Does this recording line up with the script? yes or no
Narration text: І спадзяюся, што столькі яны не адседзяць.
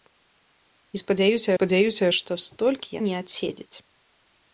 no